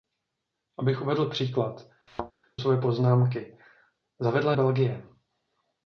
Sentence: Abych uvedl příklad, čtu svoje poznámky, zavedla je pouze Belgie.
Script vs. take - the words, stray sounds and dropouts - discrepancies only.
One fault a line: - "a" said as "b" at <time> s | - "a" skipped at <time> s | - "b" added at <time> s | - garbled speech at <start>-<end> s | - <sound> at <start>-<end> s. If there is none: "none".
- "čtu" skipped at 1.9 s
- thud at 2.1-2.3 s
- "je pouze" skipped at 4.5 s